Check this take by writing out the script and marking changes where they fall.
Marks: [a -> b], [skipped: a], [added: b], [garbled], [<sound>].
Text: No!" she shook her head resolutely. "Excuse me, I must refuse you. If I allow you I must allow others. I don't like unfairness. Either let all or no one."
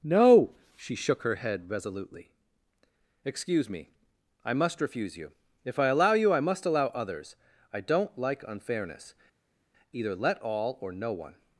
No!" she shook her head resolutely. "Excuse me, I must refuse you. If I allow you I must allow others. I don't like unfairness. Either let all or no one."